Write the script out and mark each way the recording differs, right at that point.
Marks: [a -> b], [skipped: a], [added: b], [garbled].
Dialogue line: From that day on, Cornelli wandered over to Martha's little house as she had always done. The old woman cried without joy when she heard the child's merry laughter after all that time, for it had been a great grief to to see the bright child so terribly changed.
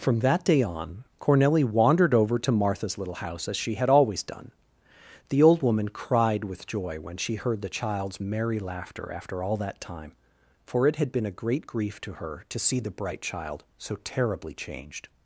From that day on, Cornelli wandered over to Martha's little house as she had always done. The old woman cried [without -> with] joy when she heard the child's merry laughter after all that time, for it had been a great grief to [added: her] to see the bright child so terribly changed.